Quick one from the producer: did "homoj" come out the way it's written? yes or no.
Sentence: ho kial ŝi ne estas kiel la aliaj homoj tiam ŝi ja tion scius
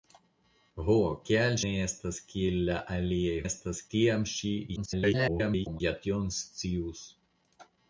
no